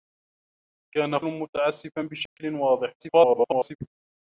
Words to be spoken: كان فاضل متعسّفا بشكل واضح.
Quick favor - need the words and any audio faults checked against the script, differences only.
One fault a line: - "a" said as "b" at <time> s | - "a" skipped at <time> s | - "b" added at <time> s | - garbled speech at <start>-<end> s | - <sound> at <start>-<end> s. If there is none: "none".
- "فاضل" skipped at 1.2 s
- dropout at 2.3-2.4 s
- garbled speech at 3.0-3.8 s